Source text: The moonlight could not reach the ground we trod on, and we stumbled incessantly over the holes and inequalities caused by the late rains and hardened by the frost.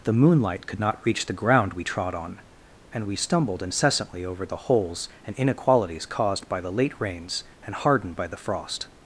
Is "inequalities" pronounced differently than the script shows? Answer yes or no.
no